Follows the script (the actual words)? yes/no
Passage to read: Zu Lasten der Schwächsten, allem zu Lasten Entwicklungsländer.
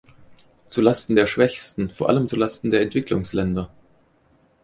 no